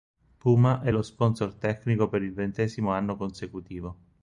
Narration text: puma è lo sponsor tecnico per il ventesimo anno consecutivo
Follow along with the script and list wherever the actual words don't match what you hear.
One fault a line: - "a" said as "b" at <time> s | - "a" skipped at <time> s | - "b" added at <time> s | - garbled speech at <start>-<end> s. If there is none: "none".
none